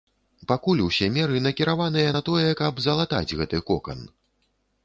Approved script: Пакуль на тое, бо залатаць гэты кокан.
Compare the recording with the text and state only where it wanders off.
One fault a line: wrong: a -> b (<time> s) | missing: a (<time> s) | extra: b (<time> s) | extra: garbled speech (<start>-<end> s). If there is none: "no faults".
extra: усе меры накіраваныя (0.8 s)
wrong: бо -> каб (2.6 s)